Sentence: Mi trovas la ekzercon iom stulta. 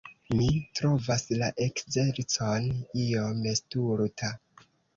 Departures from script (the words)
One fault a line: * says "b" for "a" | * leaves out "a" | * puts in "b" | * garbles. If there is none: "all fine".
all fine